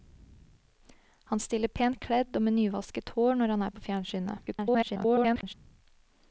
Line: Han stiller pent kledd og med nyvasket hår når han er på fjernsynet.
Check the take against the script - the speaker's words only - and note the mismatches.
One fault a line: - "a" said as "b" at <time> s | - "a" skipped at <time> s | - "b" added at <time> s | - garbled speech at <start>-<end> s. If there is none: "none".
- garbled speech at 4.5-5.5 s